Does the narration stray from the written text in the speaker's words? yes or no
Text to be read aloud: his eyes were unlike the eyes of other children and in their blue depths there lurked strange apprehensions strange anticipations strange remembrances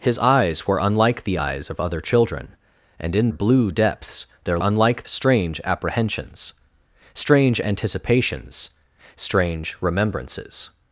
yes